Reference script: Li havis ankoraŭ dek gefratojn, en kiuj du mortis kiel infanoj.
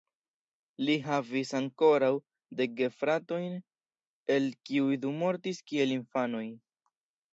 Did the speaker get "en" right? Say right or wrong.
wrong